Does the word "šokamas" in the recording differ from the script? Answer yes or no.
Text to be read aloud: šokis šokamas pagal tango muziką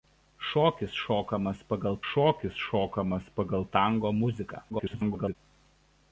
no